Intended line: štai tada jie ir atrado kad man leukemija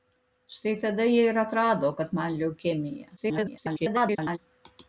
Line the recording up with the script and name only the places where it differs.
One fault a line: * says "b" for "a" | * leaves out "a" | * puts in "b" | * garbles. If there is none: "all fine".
* garbles